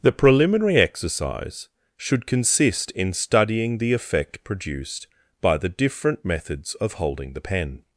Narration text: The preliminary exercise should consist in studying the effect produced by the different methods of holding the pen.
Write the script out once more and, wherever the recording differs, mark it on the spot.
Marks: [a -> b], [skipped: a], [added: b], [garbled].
The preliminary exercise should consist in studying the effect produced by the different methods of holding the pen.